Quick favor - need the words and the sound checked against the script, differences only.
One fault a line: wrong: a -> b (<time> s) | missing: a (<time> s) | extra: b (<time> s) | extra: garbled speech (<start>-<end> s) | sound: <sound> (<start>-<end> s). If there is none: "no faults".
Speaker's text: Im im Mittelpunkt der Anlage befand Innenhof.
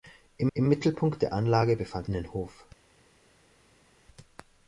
no faults